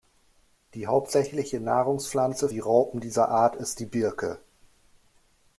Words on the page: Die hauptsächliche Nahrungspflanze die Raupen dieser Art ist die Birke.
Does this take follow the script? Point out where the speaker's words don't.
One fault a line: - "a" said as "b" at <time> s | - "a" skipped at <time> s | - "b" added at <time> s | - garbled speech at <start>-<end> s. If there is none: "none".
none